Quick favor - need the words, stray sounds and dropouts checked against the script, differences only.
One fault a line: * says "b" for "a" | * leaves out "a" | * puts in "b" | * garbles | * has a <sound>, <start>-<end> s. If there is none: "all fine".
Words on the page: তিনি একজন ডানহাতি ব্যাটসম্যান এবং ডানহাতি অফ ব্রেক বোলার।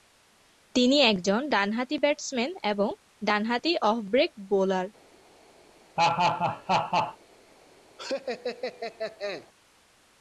* has a laugh, 6.0-7.2 s
* has a laugh, 8.0-9.5 s